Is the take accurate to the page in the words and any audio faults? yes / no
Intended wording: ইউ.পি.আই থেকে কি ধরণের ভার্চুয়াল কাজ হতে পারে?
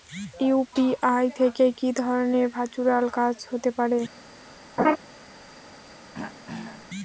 no